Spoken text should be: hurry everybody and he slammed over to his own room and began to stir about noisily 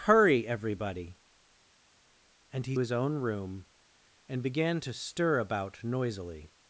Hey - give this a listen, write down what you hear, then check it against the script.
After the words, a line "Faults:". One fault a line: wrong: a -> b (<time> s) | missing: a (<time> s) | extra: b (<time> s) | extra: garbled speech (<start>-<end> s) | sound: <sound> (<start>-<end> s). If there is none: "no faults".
hurry everybody and he his own room and began to stir about noisily
Faults:
missing: slammed over to (2.8 s)